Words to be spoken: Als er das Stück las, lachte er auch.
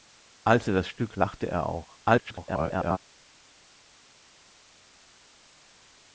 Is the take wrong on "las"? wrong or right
wrong